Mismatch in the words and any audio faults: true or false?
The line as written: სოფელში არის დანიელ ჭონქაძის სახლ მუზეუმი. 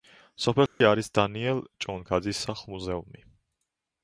true